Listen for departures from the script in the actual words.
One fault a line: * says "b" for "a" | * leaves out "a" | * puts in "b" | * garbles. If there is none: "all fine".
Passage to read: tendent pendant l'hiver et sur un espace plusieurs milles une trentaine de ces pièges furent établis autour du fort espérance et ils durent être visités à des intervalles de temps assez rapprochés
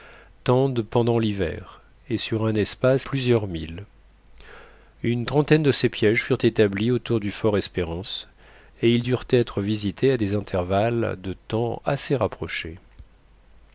all fine